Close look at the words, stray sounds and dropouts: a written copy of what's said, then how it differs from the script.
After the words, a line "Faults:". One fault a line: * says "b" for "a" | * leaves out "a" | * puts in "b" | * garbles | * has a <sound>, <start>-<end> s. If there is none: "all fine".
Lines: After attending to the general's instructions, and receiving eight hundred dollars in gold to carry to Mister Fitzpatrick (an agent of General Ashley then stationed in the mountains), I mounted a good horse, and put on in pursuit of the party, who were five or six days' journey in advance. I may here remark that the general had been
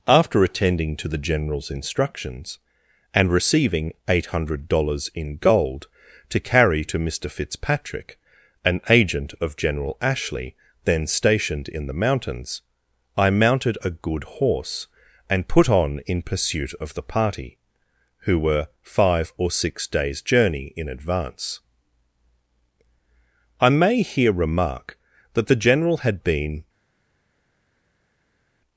After attending to the general's instructions, and receiving eight hundred dollars in gold to carry to Mister Fitzpatrick (an agent of General Ashley then stationed in the mountains), I mounted a good horse, and put on in pursuit of the party, who were five or six days' journey in advance. I may here remark that the general had been
Faults:
all fine